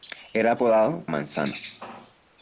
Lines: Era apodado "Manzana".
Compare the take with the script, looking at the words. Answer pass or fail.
pass